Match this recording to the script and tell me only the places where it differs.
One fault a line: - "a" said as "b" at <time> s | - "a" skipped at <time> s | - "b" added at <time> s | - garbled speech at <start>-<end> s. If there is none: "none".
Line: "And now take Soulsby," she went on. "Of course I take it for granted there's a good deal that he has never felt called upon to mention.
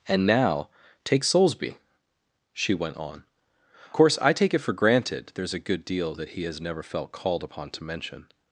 - "Of" skipped at 3.2 s